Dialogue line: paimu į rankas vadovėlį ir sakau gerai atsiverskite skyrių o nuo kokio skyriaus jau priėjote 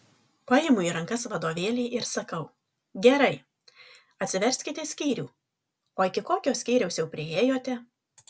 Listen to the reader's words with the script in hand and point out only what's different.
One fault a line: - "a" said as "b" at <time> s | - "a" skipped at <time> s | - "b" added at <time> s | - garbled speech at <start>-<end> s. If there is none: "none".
- "nuo" said as "iki" at 6.1 s